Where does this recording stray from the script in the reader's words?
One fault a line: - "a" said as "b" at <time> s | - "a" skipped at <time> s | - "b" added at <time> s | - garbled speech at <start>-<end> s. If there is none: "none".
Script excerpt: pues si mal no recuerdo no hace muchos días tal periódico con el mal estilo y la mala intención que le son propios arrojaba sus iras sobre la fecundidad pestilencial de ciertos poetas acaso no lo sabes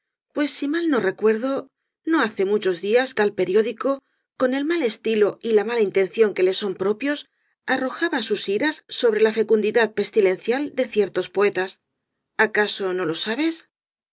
none